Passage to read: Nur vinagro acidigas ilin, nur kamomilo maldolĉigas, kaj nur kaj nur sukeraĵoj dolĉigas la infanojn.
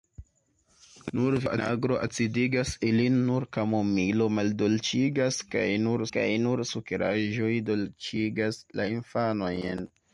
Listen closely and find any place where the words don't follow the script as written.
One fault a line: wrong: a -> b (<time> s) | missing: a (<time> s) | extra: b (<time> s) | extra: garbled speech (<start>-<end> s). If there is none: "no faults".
no faults